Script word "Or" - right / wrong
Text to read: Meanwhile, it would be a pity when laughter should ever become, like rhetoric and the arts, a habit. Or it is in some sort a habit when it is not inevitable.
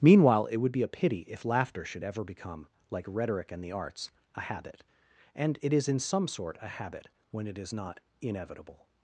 wrong